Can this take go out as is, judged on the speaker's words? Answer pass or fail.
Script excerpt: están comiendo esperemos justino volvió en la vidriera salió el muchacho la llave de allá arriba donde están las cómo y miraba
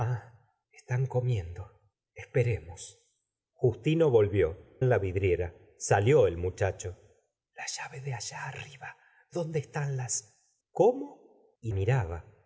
pass